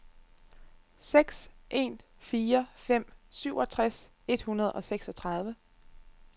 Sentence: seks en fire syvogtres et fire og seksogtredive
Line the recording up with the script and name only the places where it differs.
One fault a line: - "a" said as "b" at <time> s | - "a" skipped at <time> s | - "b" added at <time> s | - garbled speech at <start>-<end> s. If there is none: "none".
- "fem" added at 2.8 s
- "fire" said as "hundrede" at 4.4 s